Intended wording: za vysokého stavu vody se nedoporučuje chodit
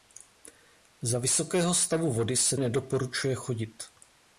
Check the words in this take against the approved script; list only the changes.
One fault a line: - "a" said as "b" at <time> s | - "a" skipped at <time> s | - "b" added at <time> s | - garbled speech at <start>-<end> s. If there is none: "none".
none